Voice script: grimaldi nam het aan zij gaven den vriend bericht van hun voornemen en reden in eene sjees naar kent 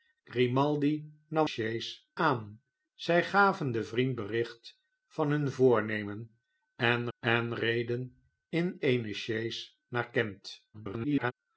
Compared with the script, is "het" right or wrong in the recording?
wrong